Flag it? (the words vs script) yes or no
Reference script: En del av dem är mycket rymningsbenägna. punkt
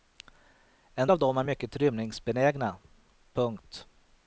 yes